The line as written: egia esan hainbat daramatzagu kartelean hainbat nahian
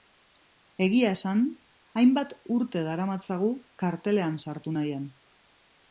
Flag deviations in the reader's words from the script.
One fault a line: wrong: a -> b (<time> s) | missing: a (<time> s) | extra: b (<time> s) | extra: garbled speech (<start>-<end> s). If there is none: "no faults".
extra: urte (2.6 s)
wrong: hainbat -> sartu (4.4 s)